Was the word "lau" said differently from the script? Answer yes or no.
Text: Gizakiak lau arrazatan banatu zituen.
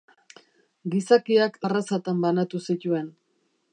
yes